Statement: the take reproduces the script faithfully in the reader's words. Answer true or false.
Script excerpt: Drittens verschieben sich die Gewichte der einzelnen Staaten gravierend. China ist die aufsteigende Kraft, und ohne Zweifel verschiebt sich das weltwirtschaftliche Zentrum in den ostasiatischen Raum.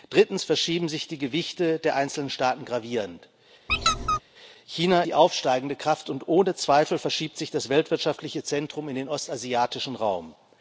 false